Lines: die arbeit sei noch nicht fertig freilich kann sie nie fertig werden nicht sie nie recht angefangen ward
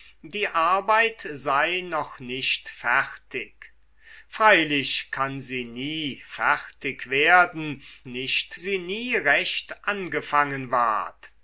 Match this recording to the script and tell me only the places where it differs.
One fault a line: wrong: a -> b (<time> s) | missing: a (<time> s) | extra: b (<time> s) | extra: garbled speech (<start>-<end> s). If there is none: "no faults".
no faults